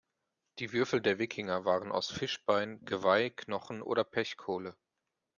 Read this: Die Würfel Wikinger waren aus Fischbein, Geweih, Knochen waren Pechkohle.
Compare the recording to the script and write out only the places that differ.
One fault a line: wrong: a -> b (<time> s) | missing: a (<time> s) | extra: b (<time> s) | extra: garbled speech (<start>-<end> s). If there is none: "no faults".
extra: der (1.0 s)
wrong: waren -> oder (3.8 s)